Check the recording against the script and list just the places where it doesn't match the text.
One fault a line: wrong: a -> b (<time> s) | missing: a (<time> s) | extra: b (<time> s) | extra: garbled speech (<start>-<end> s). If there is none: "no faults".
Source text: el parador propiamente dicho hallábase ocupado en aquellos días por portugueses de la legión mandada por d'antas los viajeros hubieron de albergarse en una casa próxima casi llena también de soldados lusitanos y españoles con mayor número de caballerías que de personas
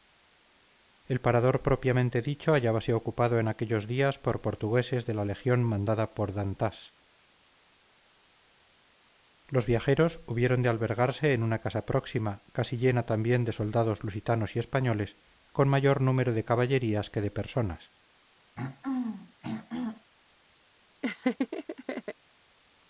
no faults